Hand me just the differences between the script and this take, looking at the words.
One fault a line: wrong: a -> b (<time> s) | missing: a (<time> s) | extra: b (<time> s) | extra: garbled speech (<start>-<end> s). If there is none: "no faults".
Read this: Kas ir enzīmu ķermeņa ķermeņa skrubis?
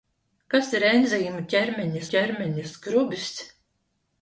no faults